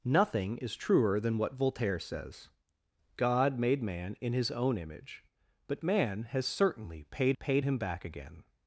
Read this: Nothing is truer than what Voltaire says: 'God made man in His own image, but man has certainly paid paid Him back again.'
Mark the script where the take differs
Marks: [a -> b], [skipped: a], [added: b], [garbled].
Nothing is truer than what Voltaire says: 'God made man in His own image, but man has certainly paid paid Him back again.'